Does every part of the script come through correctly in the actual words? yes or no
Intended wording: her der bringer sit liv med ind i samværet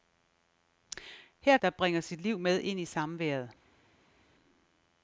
yes